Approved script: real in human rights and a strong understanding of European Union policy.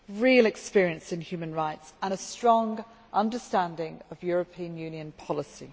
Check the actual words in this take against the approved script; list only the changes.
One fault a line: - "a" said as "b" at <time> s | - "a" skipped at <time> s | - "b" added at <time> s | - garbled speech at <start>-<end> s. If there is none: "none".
- "experience" added at 0.5 s